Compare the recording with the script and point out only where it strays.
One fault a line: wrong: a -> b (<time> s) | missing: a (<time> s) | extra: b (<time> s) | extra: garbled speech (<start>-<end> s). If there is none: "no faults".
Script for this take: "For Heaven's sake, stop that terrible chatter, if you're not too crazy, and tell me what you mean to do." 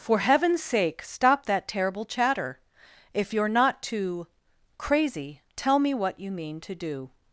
missing: and (5.4 s)